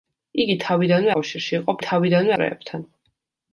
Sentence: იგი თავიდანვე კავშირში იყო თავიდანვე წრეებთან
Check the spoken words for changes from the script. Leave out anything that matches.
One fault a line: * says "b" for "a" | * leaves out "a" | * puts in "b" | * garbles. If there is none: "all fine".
all fine